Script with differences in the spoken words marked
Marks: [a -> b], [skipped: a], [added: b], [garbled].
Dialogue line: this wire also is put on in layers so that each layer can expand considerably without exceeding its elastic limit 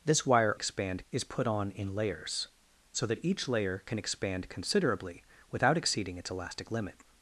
this wire [also -> expand] is put on in layers so that each layer can expand considerably without exceeding its elastic limit